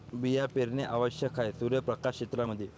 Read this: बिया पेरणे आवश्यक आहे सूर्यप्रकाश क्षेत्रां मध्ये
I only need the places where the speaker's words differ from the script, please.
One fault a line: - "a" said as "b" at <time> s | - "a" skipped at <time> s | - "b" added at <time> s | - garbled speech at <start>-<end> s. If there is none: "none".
none